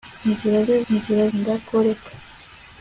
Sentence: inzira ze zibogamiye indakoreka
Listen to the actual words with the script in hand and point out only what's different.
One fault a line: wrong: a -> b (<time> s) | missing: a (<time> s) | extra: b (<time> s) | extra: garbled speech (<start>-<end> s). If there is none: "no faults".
wrong: zibogamiye -> inzira (0.9 s)